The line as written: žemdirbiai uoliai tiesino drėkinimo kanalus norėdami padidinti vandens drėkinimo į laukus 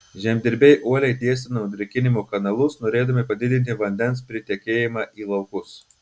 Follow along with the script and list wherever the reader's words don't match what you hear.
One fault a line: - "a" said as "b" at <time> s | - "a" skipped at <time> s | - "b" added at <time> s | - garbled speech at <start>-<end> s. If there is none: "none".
- "drėkinimo" said as "pritekėjimą" at 4.3 s